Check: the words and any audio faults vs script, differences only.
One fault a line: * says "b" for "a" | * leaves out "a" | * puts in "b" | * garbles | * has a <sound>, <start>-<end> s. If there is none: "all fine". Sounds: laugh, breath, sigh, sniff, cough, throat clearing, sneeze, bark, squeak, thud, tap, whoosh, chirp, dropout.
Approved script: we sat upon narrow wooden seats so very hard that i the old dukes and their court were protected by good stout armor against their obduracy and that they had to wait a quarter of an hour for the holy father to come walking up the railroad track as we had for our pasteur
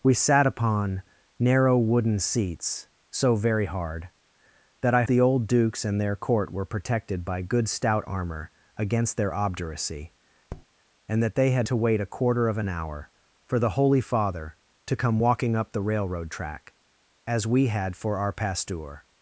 * has a tap, 10.5-10.7 s